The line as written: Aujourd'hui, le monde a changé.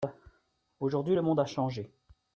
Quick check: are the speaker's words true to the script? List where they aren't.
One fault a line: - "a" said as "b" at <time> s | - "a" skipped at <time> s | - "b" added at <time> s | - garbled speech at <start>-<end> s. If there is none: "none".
none